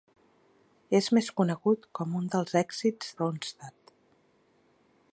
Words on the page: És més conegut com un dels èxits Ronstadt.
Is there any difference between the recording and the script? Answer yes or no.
no